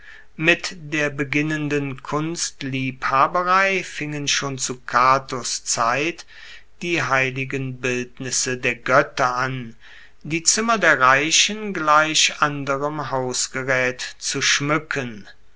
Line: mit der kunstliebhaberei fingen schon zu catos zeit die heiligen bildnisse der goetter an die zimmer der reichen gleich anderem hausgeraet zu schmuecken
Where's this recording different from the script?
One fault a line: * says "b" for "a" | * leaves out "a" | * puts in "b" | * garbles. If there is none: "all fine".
* puts in "beginnenden"